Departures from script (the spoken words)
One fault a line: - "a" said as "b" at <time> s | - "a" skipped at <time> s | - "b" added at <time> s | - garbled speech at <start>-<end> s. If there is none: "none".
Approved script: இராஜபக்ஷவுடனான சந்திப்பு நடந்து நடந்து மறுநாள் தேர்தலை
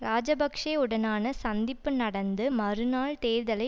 - "நடந்து" skipped at 2.5 s